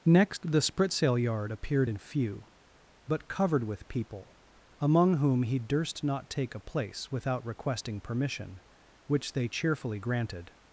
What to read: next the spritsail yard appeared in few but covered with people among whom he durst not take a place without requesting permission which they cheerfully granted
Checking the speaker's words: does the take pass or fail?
pass